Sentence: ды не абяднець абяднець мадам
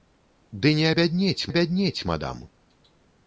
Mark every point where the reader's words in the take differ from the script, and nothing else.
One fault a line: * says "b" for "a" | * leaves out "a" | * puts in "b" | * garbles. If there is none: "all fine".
all fine